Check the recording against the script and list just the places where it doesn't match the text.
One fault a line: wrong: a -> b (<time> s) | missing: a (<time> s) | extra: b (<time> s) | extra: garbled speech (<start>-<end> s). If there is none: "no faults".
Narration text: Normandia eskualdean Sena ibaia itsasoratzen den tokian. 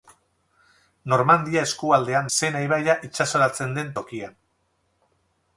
no faults